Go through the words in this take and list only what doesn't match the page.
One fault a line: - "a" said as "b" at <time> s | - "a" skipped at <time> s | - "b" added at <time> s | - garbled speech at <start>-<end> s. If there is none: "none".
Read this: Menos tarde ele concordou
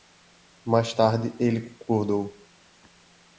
- "Menos" said as "Mais" at 0.7 s